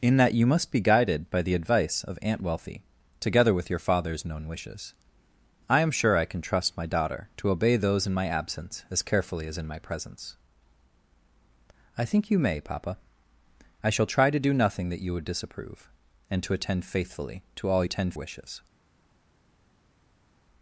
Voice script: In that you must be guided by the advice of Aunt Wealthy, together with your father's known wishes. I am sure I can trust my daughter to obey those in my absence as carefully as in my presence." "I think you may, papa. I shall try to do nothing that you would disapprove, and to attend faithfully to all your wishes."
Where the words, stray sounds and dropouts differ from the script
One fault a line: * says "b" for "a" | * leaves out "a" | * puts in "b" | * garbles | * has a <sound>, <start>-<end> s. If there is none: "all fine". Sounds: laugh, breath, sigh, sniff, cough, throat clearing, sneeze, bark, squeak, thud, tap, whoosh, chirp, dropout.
* says "attend" for "your"